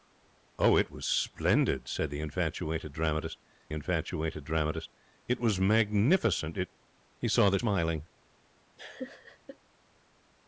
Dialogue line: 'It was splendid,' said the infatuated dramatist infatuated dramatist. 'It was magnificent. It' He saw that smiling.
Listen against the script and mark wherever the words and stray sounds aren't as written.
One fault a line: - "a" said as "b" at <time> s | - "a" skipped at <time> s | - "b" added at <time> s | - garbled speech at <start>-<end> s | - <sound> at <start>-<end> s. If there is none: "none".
- laugh at 8.8-9.6 s